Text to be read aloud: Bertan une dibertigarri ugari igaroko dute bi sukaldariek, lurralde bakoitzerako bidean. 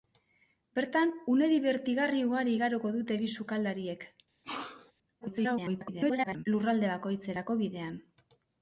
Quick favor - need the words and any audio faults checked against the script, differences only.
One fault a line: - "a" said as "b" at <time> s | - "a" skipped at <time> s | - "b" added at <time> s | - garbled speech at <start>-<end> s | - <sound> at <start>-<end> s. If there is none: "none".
- sneeze at 4.4-4.9 s
- garbled speech at 5.2-6.5 s